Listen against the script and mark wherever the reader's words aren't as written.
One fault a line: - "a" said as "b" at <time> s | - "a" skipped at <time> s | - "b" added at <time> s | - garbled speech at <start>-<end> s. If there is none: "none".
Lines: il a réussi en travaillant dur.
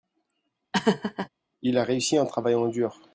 none